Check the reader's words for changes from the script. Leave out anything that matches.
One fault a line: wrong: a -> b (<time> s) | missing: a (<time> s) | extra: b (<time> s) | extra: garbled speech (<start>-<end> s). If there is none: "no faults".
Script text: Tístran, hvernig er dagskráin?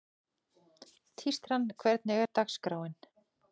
no faults